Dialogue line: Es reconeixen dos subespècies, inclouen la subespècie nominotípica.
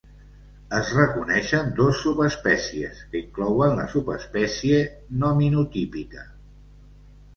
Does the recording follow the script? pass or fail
fail